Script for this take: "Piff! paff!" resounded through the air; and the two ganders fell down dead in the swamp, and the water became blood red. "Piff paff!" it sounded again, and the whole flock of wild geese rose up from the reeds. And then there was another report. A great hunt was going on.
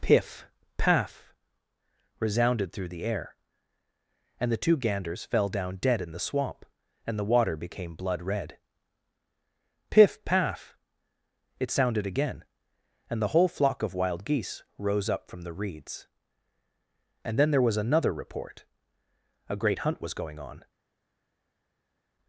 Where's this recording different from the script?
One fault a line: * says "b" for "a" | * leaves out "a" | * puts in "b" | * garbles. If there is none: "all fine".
all fine